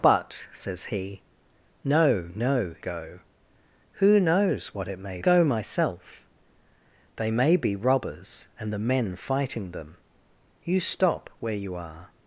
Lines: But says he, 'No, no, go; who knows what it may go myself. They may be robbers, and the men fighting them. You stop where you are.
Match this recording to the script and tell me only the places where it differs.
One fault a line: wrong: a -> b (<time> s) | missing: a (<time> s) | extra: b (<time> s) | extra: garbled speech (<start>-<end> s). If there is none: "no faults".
no faults